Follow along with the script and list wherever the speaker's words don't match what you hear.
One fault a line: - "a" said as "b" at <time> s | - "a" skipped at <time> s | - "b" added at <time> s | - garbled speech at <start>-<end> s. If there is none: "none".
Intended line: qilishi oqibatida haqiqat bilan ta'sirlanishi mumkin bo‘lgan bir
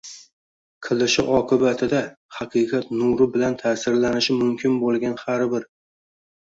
- "nuri" added at 3.0 s
- "har" added at 5.2 s